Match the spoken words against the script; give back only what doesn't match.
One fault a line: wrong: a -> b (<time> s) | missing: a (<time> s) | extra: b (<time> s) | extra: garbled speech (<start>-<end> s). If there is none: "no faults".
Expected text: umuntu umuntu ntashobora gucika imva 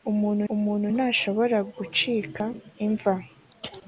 no faults